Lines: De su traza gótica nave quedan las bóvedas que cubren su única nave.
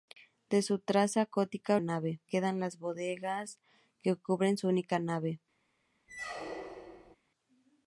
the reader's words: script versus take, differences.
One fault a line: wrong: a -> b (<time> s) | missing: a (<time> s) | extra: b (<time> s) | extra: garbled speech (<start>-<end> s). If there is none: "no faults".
no faults